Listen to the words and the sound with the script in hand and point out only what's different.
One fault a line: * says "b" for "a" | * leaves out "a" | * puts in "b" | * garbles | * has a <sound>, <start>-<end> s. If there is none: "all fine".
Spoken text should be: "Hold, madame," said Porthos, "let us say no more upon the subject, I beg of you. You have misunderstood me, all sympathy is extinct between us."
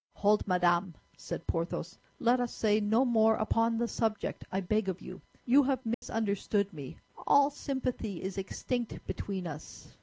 * has a dropout, 5.9-6.0 s